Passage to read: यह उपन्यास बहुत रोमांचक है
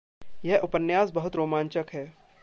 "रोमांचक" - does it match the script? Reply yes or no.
yes